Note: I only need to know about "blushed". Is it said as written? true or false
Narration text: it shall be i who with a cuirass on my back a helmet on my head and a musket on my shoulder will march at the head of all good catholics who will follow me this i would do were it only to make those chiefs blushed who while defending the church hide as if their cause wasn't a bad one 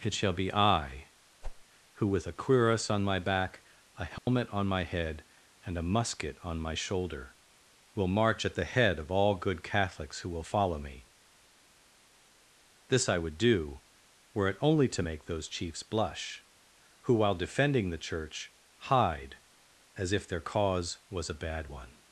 false